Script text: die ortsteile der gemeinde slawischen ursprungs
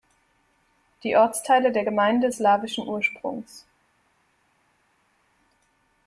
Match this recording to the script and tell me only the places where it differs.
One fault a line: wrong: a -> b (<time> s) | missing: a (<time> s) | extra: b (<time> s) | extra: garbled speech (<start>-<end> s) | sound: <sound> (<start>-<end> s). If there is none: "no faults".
no faults